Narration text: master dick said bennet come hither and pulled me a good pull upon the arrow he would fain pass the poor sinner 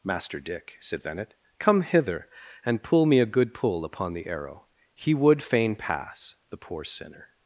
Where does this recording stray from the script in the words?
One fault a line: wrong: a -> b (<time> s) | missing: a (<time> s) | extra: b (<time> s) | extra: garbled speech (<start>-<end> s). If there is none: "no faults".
wrong: pulled -> pull (2.8 s)